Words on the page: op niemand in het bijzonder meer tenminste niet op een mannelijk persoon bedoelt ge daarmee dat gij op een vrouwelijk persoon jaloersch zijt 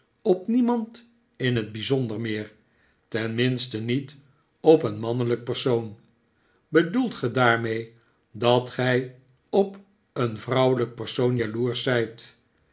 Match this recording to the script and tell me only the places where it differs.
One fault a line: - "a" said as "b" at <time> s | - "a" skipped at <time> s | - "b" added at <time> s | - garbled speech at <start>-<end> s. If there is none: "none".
none